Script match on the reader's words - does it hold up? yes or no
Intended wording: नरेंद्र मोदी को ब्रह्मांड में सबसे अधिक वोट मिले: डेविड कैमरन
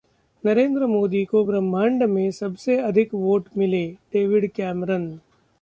yes